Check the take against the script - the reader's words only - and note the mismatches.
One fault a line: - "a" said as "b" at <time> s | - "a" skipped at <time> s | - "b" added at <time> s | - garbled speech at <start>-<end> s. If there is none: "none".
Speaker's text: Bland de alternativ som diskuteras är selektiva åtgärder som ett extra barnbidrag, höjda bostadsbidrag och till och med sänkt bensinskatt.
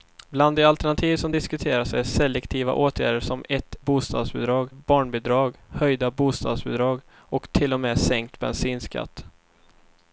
- "extra" said as "bostadsbidrag" at 3.8 s